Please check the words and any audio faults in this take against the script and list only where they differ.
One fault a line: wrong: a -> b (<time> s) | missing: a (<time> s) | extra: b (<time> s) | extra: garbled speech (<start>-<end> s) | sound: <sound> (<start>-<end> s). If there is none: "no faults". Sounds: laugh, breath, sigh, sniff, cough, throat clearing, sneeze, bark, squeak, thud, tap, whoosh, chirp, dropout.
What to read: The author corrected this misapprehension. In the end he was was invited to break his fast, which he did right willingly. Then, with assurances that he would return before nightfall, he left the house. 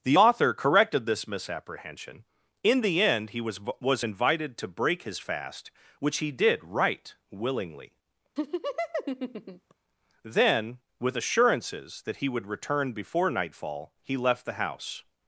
sound: laugh (8.4-9.7 s)